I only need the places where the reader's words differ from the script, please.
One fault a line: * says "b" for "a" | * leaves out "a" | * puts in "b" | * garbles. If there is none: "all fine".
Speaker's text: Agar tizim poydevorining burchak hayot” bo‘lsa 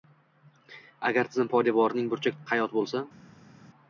all fine